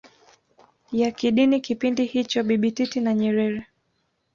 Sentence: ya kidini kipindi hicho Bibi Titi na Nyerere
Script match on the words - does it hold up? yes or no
yes